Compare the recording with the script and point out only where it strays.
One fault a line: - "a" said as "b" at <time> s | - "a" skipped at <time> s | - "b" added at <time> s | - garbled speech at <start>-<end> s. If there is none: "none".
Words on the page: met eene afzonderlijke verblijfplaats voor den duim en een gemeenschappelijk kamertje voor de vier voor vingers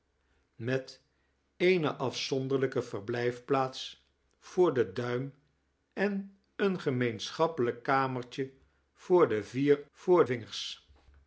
none